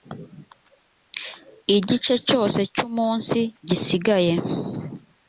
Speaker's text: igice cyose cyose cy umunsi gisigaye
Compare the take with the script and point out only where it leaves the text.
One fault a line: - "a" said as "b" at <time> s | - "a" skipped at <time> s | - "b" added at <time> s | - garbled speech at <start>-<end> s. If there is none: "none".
- "cyose" skipped at 2.6 s